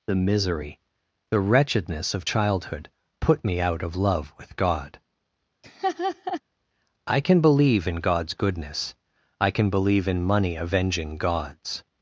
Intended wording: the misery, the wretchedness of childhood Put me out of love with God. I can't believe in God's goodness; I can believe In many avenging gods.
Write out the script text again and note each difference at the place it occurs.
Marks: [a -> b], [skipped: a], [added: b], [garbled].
the misery, the wretchedness of childhood Put me out of love with God. I [can't -> can] believe in God's goodness; I can believe In [many -> money] avenging gods.